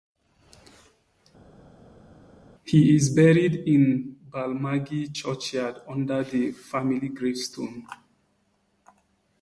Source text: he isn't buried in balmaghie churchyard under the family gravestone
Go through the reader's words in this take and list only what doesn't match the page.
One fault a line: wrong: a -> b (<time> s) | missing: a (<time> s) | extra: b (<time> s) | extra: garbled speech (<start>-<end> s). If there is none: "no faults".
wrong: isn't -> is (3.0 s)